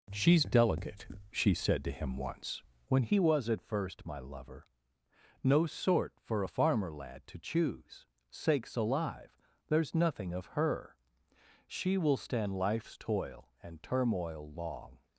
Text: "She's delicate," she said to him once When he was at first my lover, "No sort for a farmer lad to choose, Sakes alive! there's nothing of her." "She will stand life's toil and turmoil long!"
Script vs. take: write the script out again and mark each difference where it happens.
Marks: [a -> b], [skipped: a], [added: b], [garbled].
"She's delicate," she said to him once When he was at first my lover, "No sort for a farmer lad to choose, Sakes alive! there's nothing of her." "She will stand life's toil and turmoil long!"